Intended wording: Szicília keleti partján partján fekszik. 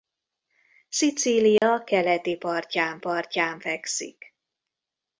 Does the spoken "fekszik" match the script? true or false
true